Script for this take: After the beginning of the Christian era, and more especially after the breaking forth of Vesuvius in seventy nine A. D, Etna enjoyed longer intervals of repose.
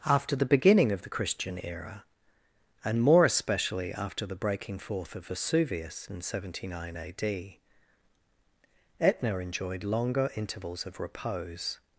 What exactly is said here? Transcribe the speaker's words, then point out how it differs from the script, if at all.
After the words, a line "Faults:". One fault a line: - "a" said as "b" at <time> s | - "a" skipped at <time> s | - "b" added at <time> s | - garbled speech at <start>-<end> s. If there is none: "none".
After the beginning of the Christian era, and more especially after the breaking forth of Vesuvius in seventy nine A. D, Etna enjoyed longer intervals of repose.
Faults:
none